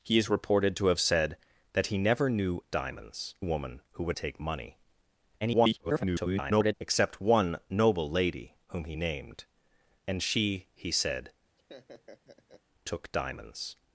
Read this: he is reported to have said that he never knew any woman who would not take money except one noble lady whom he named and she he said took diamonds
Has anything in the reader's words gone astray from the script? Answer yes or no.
yes